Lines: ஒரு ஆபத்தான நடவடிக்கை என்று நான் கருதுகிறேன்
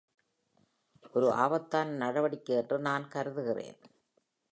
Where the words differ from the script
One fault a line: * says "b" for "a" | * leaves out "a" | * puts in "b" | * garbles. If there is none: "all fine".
all fine